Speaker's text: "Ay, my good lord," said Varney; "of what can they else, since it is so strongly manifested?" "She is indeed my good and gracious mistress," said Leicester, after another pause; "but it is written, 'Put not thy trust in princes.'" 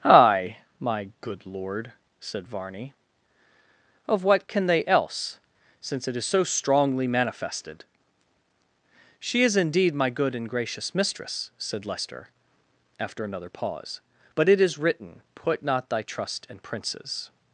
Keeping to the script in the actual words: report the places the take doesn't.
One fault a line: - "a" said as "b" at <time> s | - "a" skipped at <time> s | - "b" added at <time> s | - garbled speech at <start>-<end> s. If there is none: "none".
none